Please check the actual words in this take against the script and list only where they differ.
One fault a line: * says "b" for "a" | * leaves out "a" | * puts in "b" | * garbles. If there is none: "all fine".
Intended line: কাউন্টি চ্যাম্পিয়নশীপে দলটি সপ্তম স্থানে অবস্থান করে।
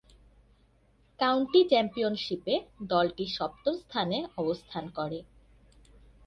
all fine